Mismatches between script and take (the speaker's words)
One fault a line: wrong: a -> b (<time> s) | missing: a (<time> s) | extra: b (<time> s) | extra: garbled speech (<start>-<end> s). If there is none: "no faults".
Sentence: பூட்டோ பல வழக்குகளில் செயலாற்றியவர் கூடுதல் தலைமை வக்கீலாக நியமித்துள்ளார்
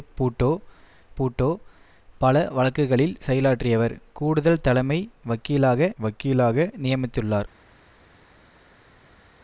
extra: பூட்டோ (1.2 s)
extra: வக்கீலாக (6.0 s)